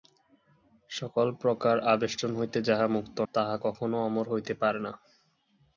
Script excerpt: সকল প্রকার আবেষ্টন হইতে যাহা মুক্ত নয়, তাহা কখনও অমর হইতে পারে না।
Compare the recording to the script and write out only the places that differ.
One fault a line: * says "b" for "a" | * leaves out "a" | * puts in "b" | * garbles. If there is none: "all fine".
* leaves out "নয়"